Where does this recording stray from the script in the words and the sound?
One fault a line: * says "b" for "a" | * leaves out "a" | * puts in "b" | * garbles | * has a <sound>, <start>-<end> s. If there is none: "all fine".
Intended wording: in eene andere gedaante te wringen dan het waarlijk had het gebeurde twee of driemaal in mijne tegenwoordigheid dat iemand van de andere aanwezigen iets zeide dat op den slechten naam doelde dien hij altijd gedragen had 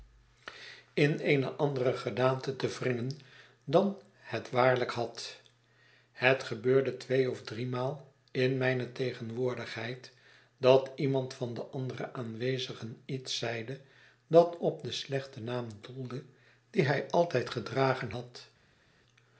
all fine